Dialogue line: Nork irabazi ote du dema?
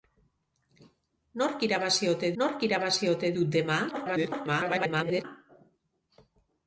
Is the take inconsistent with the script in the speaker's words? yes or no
yes